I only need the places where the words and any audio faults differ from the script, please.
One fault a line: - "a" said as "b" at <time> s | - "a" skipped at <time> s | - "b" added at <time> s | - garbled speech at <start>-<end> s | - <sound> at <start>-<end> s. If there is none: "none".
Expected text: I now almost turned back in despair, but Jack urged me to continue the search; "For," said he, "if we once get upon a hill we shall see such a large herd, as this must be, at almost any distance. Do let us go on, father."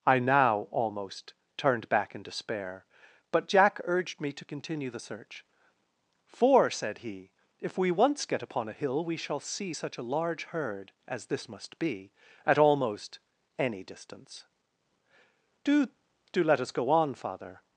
- "Do" added at 16.3 s